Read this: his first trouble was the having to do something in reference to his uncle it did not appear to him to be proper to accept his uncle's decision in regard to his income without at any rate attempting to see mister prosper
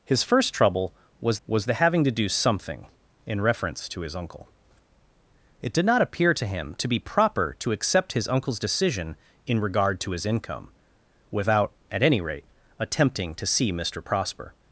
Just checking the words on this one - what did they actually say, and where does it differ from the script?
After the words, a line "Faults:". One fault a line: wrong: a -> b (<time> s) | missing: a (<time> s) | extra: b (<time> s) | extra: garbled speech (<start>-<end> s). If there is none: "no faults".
his first trouble was was the having to do something in reference to his uncle it did not appear to him to be proper to accept his uncle's decision in regard to his income without at any rate attempting to see mister prosper
Faults:
extra: was (1.5 s)